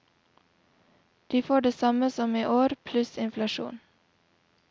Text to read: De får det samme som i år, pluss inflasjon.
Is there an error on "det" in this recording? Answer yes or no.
no